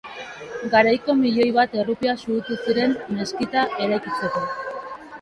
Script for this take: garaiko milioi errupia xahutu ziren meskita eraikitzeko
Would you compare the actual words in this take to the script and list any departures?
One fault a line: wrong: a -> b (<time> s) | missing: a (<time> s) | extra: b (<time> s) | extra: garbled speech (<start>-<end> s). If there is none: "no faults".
extra: bat (1.6 s)